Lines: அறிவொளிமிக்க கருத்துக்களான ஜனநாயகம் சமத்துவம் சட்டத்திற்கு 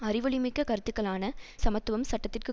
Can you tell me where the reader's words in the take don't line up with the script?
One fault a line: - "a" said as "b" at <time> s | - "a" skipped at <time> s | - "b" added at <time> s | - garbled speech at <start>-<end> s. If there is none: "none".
- "ஜனநாயகம்" skipped at 1.2 s